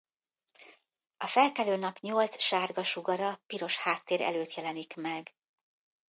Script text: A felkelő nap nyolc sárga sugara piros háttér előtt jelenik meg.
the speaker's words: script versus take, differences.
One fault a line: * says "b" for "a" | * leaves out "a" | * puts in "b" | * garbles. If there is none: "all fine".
all fine